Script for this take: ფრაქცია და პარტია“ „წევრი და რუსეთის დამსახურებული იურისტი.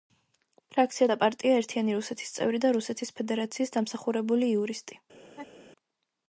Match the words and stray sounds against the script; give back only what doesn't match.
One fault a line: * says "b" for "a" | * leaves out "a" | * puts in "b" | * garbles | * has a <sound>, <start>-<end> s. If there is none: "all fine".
* puts in "ერთიანი რუსეთის"
* puts in "ფედერაციის"
* has a laugh, 5.2-5.7 s